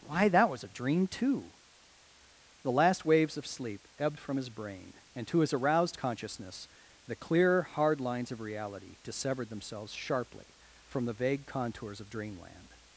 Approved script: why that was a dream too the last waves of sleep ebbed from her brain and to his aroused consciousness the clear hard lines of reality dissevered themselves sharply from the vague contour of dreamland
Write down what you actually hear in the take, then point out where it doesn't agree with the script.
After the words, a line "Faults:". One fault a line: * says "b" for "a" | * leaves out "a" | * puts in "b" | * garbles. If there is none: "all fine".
why that was a dream too the last waves of sleep ebbed from his brain and to his aroused consciousness the clear hard lines of reality dissevered themselves sharply from the vague contours of dreamland
Faults:
* says "his" for "her"
* says "contours" for "contour"